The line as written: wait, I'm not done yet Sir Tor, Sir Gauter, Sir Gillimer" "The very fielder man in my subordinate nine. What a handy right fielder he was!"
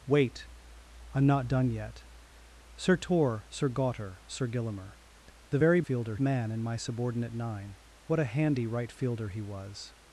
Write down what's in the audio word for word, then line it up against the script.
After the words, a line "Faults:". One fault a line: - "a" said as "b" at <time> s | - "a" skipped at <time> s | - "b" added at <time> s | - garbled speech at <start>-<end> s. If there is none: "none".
wait, I'm not done yet Sir Tor, Sir Gauter, Sir Gillimer" "The very fielder man in my subordinate nine. What a handy right fielder he was!"
Faults:
none